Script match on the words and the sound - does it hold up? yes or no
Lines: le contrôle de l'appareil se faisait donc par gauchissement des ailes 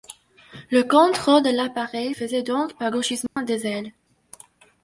no